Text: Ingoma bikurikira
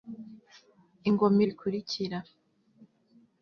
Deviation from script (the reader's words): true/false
false